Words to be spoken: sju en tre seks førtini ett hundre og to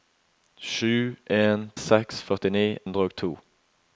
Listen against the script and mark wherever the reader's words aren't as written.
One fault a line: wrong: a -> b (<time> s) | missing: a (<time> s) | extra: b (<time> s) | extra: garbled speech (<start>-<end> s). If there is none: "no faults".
missing: tre (1.7 s)
missing: ett (2.7 s)